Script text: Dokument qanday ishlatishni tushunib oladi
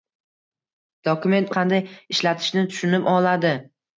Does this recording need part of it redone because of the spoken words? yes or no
no